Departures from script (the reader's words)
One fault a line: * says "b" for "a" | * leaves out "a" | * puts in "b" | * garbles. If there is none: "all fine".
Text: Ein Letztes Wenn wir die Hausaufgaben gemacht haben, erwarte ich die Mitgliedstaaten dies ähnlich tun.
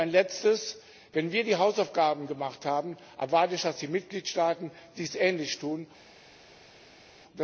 all fine